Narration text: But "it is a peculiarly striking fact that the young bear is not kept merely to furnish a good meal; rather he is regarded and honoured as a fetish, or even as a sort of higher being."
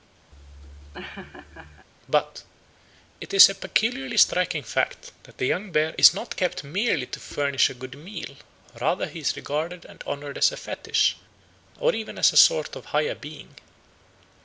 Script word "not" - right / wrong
right